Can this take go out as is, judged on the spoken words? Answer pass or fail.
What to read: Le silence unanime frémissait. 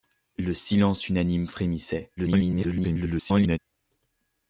fail